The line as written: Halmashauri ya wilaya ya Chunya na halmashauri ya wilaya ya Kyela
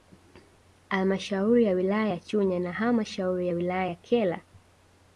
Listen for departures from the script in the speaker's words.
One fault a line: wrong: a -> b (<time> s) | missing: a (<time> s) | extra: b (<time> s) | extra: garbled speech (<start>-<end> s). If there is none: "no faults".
no faults